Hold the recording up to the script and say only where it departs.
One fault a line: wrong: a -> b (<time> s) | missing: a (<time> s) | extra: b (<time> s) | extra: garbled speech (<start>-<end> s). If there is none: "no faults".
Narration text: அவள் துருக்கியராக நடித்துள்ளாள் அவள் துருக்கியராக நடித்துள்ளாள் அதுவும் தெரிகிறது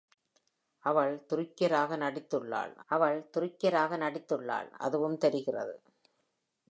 no faults